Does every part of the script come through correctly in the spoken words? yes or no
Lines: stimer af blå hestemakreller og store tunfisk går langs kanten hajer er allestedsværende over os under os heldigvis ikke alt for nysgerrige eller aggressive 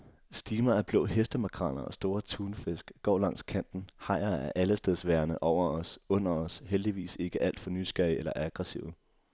yes